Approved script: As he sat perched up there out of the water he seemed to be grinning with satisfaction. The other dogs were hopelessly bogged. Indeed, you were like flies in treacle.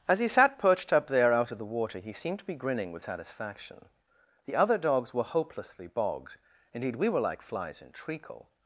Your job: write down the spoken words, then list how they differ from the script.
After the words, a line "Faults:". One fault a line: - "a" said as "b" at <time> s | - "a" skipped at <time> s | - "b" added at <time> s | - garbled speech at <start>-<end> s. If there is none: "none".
As he sat perched up there out of the water he seemed to be grinning with satisfaction. The other dogs were hopelessly bogged. Indeed, we were like flies in treacle.
Faults:
- "you" said as "we" at 7.0 s